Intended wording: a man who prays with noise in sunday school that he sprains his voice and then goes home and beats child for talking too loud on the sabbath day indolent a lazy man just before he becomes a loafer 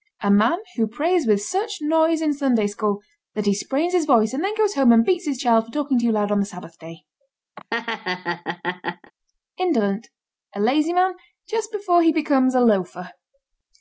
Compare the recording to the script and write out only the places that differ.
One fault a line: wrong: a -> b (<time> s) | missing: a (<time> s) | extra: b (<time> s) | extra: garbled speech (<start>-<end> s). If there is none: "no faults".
extra: such (1.4 s)
extra: his (5.3 s)